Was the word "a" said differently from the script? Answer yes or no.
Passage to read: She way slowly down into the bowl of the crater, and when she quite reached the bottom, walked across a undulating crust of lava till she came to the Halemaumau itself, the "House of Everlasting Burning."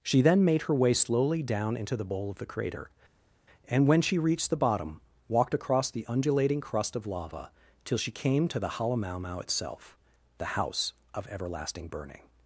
yes